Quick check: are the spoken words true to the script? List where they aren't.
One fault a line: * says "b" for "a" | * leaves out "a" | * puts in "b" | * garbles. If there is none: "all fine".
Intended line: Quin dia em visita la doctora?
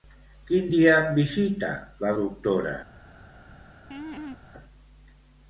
all fine